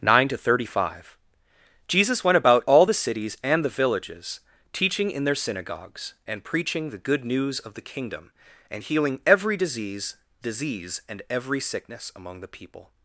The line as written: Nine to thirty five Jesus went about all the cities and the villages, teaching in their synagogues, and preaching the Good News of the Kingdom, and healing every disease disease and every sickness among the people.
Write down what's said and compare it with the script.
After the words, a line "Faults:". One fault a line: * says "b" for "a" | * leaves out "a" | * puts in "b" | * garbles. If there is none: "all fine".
Nine to thirty five Jesus went about all the cities and the villages, teaching in their synagogues, and preaching the Good News of the Kingdom, and healing every disease disease and every sickness among the people.
Faults:
all fine